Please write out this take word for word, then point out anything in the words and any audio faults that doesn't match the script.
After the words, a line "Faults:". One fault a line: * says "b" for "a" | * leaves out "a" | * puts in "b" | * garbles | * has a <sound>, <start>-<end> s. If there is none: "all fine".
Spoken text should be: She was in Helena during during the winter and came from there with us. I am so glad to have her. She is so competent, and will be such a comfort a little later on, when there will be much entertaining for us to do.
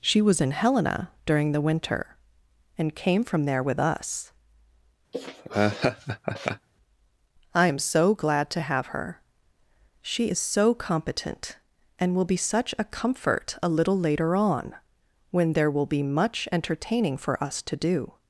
She was in Helena during the winter and came from there with us. I am so glad to have her. She is so competent, and will be such a comfort a little later on, when there will be much entertaining for us to do.
Faults:
* leaves out "during"
* has a laugh, 5.1-6.7 s